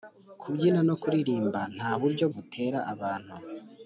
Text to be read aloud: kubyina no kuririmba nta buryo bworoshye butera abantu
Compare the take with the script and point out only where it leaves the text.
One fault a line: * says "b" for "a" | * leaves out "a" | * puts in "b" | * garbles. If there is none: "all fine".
* leaves out "bworoshye"